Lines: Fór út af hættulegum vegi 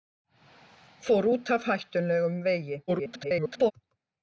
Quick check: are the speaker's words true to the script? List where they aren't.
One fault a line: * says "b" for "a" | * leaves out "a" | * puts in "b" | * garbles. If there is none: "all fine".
* garbles